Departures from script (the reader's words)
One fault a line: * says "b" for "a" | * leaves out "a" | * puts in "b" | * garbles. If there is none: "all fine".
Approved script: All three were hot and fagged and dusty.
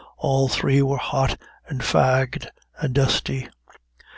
all fine